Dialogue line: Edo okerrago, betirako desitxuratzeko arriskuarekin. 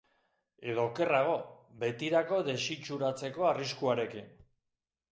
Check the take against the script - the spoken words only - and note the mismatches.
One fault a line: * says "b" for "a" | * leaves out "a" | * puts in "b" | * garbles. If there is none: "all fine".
all fine